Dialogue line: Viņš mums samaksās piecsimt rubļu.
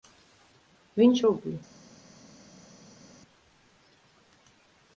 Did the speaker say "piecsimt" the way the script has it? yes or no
no